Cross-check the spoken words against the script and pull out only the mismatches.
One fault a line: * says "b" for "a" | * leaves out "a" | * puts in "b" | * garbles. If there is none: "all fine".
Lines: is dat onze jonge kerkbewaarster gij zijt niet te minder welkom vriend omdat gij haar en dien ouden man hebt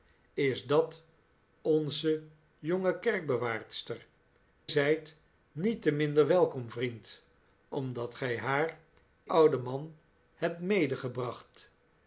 * leaves out "gij"
* leaves out "en dien"